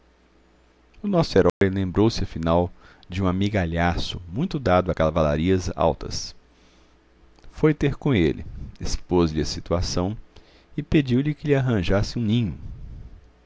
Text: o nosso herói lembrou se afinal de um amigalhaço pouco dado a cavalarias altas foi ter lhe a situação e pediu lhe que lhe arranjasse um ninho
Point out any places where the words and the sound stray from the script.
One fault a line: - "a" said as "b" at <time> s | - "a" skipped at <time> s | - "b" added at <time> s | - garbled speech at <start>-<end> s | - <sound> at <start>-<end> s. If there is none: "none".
- dropout at 1.5-1.6 s
- "pouco" said as "muito" at 4.3 s
- "com ele expôs" added at 8.0 s